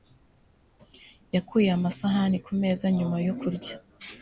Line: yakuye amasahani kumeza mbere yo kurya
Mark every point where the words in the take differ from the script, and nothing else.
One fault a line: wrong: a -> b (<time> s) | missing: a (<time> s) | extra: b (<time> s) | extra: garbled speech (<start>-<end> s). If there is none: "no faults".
wrong: mbere -> nyuma (3.0 s)